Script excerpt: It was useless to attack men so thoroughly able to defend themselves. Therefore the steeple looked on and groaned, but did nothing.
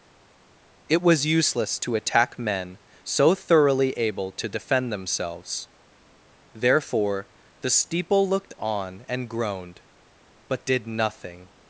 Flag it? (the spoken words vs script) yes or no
no